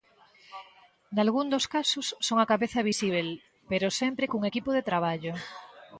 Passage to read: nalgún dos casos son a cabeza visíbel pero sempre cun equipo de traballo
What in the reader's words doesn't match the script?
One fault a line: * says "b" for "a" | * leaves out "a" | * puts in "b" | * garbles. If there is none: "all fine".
all fine